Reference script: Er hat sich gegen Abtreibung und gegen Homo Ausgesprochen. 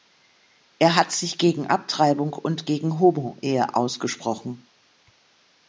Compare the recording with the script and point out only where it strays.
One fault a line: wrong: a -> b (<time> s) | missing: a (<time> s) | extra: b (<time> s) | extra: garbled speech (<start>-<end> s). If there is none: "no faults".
extra: Ehe (3.4 s)